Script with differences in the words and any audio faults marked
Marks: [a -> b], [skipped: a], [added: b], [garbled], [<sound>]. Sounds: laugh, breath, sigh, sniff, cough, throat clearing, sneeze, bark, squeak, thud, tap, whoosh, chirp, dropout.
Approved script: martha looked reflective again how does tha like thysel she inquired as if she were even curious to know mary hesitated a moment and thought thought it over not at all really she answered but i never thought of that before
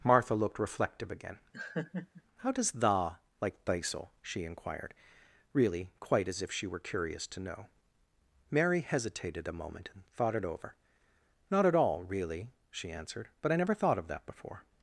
martha looked reflective again [laugh] how does tha like thysel she inquired [added: really quite] as if she were [skipped: even] curious to know mary hesitated a moment and thought [skipped: thought] it over not at all really she answered but i never thought of that before